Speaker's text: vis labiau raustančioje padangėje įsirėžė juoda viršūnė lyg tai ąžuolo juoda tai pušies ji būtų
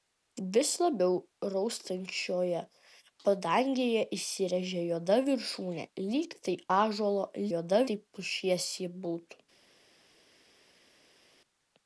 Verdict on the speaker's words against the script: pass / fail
pass